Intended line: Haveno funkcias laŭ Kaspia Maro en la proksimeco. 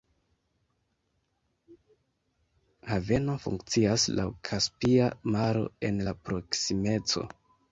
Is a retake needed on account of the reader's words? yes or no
no